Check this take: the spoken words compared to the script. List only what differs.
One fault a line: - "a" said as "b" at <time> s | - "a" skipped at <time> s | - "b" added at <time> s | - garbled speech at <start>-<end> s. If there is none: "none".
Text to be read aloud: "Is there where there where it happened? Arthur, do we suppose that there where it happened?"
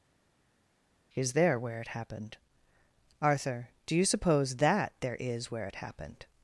- "there where" skipped at 1.8 s
- "we" said as "you" at 4.0 s
- "is" added at 5.2 s